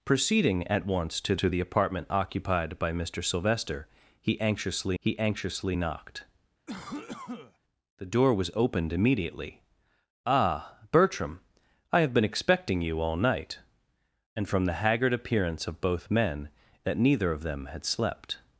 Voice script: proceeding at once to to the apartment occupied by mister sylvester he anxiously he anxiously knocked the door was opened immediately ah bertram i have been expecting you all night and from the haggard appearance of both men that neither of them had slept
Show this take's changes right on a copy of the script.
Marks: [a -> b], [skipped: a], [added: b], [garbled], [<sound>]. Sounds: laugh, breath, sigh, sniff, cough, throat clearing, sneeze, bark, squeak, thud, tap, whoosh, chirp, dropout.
proceeding at once to to the apartment occupied by mister sylvester he anxiously he anxiously knocked [cough] the door was opened immediately ah bertram i have been expecting you all night and from the haggard appearance of both men that neither of them had slept